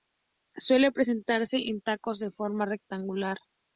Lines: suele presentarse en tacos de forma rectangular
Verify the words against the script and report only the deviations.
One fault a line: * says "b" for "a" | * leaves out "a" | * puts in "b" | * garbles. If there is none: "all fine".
all fine